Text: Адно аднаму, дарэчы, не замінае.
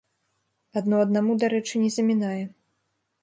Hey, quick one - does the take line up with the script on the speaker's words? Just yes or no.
yes